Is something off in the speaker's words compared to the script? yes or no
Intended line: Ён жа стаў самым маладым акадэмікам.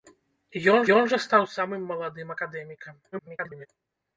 yes